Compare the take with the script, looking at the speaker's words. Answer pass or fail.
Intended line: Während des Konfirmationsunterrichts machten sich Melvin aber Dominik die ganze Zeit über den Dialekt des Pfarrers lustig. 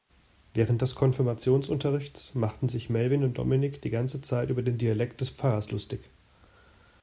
fail